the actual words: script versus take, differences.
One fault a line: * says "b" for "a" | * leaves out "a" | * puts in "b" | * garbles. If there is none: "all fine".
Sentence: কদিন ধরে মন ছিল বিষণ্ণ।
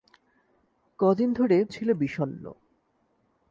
* leaves out "মন"